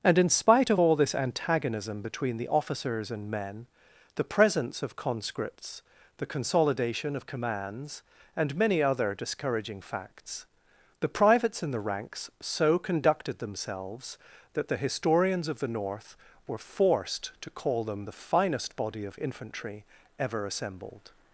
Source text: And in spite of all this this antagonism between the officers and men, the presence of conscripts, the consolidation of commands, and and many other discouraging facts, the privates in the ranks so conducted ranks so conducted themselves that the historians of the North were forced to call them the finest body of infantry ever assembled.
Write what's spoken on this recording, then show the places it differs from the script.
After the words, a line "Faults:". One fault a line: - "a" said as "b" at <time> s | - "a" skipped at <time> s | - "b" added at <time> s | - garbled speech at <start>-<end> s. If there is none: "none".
And in spite of all this antagonism between the officers and men, the presence of conscripts, the consolidation of commands, and many other discouraging facts, the privates in the ranks so conducted themselves that the historians of the North were forced to call them the finest body of infantry ever assembled.
Faults:
- "this" skipped at 1.1 s
- "and" skipped at 8.5 s
- "ranks so conducted" skipped at 13.4 s